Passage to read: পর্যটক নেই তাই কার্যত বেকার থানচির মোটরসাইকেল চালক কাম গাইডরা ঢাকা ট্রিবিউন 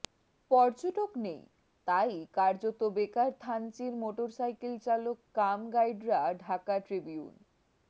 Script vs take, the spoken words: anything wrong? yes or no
no